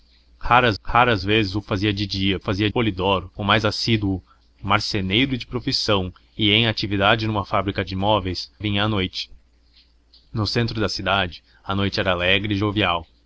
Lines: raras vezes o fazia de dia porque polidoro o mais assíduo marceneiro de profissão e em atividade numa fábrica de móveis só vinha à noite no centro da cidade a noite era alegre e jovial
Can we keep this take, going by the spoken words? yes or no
no